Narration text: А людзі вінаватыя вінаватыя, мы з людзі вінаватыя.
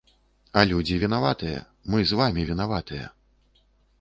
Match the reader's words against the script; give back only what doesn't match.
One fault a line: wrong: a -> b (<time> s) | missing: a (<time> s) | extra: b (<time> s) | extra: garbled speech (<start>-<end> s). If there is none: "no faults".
missing: вінаватыя (1.6 s)
wrong: людзі -> вамі (2.2 s)